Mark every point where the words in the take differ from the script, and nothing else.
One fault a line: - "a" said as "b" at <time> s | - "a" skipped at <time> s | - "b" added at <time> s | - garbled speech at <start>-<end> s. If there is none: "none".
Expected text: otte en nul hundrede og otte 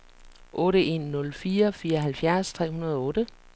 - "fire fireoghalvfjerds tre" added at 1.3 s